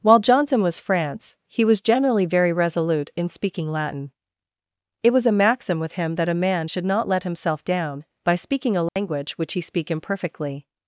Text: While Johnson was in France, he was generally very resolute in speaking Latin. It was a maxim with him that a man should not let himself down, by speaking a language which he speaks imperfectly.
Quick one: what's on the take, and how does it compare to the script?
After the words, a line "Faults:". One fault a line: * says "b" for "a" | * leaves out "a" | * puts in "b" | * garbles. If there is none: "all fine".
While Johnson was France, he was generally very resolute in speaking Latin. It was a maxim with him that a man should not let himself down, by speaking a language which he speak imperfectly.
Faults:
* leaves out "in"
* says "speak" for "speaks"